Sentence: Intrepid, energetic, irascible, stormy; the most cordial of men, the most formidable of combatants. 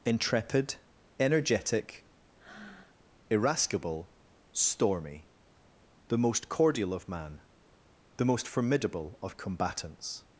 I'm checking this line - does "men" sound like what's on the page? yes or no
no